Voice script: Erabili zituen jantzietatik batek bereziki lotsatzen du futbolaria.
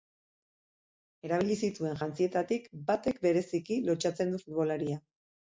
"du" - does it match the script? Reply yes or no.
yes